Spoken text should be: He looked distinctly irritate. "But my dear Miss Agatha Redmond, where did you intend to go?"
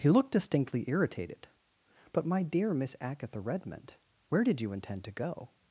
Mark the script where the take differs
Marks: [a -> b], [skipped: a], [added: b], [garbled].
He looked distinctly [irritate. -> irritated] "But my dear Miss Agatha Redmond, where did you intend to go?"